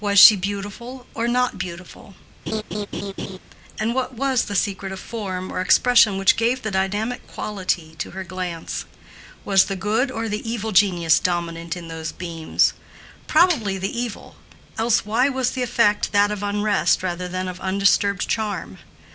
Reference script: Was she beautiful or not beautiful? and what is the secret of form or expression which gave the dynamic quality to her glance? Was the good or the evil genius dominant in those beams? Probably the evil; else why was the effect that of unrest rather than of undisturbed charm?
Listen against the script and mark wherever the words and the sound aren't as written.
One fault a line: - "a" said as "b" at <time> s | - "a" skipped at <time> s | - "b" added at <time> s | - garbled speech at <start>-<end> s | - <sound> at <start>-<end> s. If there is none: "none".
- laugh at 2.5-3.4 s
- "is" said as "was" at 4.1 s